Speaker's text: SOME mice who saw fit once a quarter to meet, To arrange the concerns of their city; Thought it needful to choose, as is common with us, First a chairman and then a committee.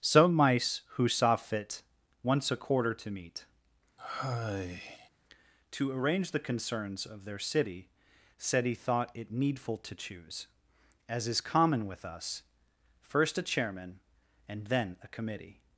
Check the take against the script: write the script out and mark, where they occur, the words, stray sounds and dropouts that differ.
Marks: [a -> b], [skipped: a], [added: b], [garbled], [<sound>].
SOME mice who saw fit once a quarter to meet, [sigh] To arrange the concerns of their city; [added: said he] Thought it needful to choose, as is common with us, First a chairman and then a committee.